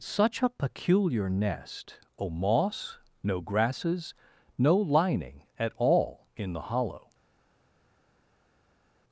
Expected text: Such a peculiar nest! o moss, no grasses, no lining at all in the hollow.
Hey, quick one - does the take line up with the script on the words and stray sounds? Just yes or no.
yes